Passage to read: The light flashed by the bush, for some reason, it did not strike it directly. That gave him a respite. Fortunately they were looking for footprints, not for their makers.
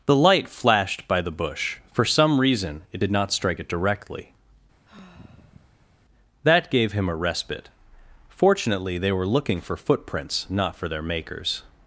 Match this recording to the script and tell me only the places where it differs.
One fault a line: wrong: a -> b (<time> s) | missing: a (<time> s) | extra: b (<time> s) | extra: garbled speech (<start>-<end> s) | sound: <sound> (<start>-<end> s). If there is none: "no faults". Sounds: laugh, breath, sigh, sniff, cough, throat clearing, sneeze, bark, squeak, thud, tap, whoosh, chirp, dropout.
sound: sigh (4.9-6.0 s)